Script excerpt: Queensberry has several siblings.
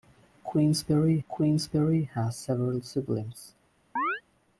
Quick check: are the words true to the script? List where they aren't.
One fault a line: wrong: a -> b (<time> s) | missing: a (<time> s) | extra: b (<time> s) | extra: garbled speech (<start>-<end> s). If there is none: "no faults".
extra: queensberry (1.3 s)